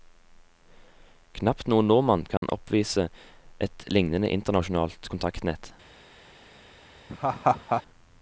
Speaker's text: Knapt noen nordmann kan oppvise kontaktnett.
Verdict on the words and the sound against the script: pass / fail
fail